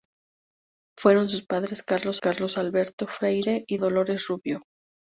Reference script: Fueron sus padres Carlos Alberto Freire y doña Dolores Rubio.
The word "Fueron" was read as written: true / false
true